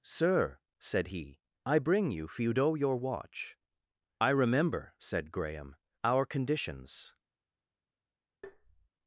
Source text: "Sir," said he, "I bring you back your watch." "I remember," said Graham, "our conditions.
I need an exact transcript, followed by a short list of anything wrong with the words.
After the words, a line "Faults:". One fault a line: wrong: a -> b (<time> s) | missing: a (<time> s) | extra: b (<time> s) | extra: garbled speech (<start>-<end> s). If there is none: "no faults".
"Sir," said he, "I bring you feudo your watch." "I remember," said Graham, "our conditions.
Faults:
wrong: back -> feudo (2.3 s)